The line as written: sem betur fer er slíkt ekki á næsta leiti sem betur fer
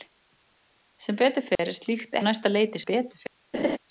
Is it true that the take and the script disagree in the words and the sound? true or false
true